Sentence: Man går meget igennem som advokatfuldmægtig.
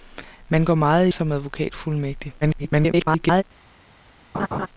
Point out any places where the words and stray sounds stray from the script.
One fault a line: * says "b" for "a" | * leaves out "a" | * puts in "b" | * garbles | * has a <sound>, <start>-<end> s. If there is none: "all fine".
* leaves out "igennem"
* garbles
* has a laugh, 4.3-4.7 s